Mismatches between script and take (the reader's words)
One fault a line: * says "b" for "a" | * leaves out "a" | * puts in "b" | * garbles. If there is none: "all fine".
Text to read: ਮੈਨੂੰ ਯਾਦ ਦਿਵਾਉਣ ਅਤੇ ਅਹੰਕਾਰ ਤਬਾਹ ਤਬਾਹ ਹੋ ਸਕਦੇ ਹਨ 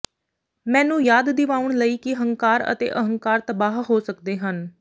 * puts in "ਲਈ ਕਿ ਹੰਕਾਰ"
* leaves out "ਤਬਾਹ"